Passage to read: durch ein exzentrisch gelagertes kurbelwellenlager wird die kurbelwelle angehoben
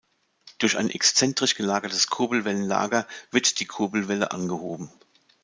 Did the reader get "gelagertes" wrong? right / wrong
right